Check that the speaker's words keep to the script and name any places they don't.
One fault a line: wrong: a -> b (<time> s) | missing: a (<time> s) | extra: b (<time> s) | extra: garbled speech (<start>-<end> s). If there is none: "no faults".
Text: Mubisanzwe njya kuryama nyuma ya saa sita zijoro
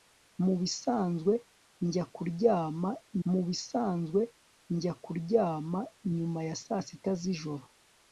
extra: mubisanzwe njya kuryama (3.3 s)